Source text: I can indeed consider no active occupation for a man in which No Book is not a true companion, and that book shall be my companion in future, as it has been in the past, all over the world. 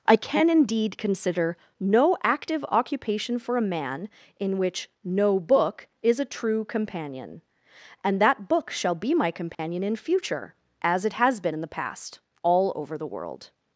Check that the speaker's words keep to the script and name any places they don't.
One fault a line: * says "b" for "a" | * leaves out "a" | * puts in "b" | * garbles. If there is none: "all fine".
* leaves out "not"